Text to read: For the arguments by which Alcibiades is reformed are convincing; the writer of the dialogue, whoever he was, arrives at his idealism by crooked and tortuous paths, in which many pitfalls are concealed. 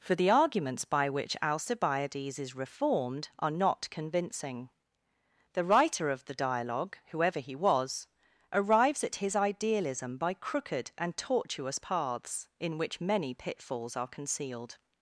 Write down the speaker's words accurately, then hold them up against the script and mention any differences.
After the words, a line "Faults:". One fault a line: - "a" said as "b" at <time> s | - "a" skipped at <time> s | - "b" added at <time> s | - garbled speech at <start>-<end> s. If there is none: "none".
For the arguments by which Alcibiades is reformed are not convincing; the writer of the dialogue, whoever he was, arrives at his idealism by crooked and tortuous paths, in which many pitfalls are concealed.
Faults:
- "not" added at 3.5 s